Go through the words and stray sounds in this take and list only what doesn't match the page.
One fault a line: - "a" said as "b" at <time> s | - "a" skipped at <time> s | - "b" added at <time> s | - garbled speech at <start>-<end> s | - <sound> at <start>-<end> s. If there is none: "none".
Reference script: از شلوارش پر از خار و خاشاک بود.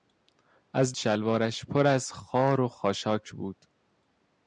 none